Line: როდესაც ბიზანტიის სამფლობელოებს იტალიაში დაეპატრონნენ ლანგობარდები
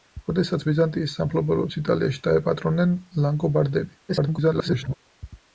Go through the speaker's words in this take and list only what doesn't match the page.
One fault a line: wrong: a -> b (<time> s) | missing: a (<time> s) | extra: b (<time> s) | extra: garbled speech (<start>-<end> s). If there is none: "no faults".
extra: garbled speech (4.1-4.9 s)